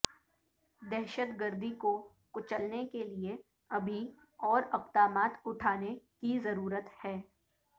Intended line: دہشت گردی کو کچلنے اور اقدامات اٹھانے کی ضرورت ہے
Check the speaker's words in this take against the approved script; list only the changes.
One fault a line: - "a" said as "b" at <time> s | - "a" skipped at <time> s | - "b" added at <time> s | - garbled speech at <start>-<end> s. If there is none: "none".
- "کے لیے ابھی" added at 2.9 s